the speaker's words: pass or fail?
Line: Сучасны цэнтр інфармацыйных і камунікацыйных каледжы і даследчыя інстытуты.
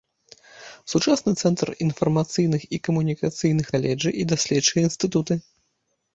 pass